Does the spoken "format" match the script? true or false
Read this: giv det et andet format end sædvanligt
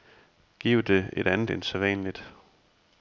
false